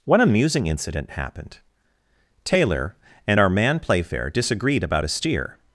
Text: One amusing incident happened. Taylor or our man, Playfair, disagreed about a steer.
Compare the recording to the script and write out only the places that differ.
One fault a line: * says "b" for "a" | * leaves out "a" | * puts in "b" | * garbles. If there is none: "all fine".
* says "and" for "or"